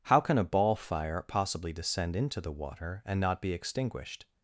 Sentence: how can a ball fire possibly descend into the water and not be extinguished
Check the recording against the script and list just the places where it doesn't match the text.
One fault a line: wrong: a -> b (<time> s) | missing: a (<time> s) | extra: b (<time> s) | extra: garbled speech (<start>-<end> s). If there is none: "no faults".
no faults